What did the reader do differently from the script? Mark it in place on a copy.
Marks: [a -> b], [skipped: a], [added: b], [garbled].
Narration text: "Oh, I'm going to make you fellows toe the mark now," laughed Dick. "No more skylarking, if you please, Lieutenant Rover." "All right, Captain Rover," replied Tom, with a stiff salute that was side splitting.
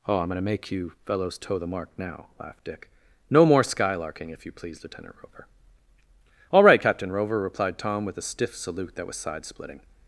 "Oh, I'm going to make you fellows toe the mark now," laughed Dick. "No more skylarking, if you please, Lieutenant Rover." "All right, Captain Rover," replied Tom, with a stiff salute that was side splitting.